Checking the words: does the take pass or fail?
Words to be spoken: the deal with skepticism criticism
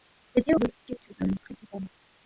pass